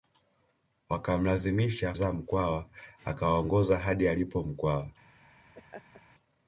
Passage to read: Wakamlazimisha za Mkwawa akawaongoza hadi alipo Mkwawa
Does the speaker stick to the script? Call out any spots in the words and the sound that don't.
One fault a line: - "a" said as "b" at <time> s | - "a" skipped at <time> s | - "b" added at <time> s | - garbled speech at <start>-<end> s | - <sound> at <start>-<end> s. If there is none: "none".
- laugh at 5.5-6.0 s